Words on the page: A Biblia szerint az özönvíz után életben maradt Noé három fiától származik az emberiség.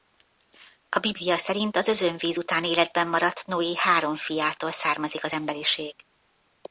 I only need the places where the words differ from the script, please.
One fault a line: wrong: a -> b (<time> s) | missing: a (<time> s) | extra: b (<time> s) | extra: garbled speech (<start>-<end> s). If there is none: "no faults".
no faults